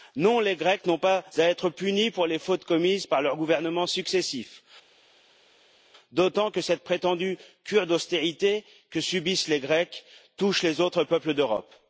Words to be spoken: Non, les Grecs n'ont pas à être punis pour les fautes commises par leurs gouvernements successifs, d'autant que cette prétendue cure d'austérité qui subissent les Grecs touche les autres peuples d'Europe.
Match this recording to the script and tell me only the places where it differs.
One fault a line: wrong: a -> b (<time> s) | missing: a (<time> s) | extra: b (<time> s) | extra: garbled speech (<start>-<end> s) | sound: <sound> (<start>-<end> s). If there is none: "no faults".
wrong: qui -> que (8.9 s)